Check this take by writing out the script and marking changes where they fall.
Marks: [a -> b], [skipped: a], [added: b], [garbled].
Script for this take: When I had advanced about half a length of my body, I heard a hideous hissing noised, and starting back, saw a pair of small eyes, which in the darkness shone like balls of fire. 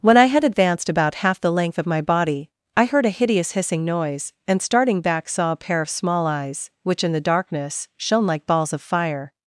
When I had advanced about half [a -> the] length of my body, I heard a hideous hissing [noised, -> noise] and starting back, saw a pair of small eyes, which in the darkness shone like balls of fire.